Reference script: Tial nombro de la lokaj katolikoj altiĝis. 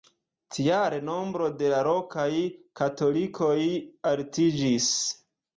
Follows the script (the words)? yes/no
yes